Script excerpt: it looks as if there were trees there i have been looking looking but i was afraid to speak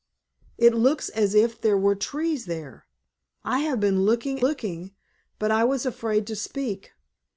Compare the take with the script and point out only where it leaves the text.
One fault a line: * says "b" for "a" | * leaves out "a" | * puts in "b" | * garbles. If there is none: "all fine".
all fine